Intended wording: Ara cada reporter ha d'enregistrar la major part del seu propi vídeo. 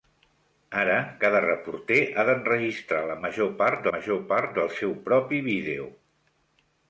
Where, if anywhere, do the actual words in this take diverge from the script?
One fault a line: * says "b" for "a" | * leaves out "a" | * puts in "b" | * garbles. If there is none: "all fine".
* puts in "major part"